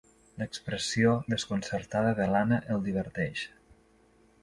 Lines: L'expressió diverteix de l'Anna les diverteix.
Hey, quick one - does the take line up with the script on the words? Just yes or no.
no